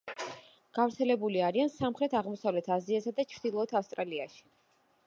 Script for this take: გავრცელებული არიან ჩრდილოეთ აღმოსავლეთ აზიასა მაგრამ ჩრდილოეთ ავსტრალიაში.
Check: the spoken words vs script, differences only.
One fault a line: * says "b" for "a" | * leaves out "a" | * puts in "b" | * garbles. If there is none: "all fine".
* says "სამხრეთ" for "ჩრდილოეთ"
* says "და" for "მაგრამ"